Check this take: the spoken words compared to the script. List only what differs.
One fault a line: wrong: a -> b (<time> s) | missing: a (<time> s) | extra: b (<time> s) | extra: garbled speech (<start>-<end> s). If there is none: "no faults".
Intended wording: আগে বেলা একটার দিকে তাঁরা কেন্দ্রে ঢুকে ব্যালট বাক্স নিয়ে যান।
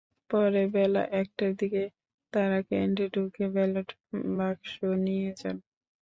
wrong: আগে -> পরে (0.3 s)